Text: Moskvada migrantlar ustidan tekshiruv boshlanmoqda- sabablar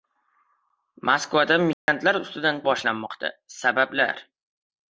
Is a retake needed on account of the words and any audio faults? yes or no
yes